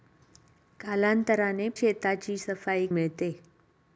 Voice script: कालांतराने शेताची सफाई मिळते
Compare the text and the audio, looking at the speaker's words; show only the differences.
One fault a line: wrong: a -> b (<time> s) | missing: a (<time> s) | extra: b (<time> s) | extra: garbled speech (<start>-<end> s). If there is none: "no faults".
no faults